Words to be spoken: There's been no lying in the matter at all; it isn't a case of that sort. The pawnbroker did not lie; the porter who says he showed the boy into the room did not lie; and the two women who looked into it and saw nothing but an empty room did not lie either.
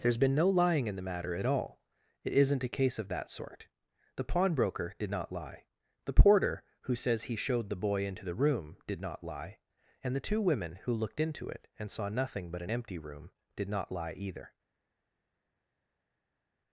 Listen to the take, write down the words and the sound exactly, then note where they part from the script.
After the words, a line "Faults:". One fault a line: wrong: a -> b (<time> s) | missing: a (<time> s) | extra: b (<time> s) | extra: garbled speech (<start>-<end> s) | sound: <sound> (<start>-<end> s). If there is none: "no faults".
There's been no lying in the matter at all; it isn't a case of that sort. The pawnbroker did not lie; the porter who says he showed the boy into the room did not lie; and the two women who looked into it and saw nothing but an empty room did not lie either.
Faults:
no faults